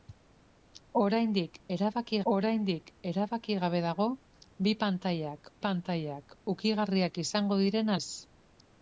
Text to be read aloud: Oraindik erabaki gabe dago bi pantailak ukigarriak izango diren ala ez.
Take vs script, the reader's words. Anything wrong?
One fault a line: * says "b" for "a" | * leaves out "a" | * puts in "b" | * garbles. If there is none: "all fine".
* puts in "oraindik erabaki"
* puts in "pantailak"
* leaves out "ala"